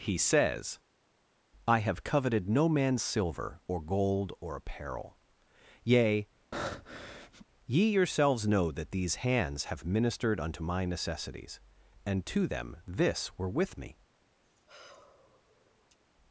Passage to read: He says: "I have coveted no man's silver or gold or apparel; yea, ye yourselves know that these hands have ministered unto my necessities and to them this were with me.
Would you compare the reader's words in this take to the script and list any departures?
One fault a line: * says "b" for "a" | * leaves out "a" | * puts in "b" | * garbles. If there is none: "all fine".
all fine